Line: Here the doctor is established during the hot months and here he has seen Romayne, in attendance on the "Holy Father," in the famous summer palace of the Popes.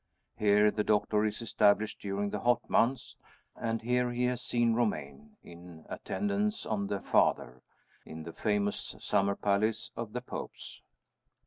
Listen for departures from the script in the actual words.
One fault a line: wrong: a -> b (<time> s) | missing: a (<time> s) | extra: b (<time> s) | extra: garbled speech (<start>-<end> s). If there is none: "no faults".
missing: Holy (7.0 s)